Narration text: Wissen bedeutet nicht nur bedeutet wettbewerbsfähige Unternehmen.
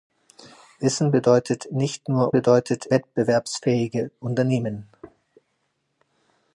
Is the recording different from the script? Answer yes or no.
no